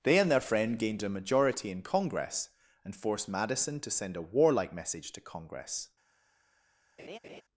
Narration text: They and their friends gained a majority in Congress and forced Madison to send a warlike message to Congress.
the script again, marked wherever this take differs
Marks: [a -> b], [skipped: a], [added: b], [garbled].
They and their [friends -> friend] gained a majority in Congress and forced Madison to send a warlike message to Congress.